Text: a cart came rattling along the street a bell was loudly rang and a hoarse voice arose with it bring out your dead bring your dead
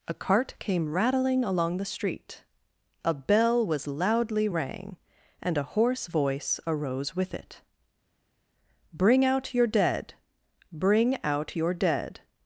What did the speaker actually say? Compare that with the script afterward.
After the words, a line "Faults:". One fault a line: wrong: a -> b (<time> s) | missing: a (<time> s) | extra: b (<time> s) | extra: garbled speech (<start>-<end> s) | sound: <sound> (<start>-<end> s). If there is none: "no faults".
a cart came rattling along the street a bell was loudly rang and a hoarse voice arose with it bring out your dead bring out your dead
Faults:
extra: out (11.2 s)